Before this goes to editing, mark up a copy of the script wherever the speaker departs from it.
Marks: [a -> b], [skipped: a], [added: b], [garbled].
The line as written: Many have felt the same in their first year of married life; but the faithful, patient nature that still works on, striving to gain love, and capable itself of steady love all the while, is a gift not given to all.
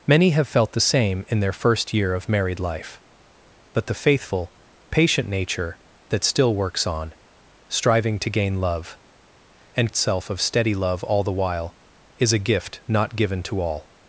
Many have felt the same in their first year of married life; but the faithful, patient nature that still works on, striving to gain love, and [skipped: capable] itself of steady love all the while, is a gift not given to all.